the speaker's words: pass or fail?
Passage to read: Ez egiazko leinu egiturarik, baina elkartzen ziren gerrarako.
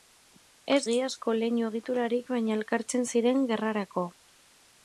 pass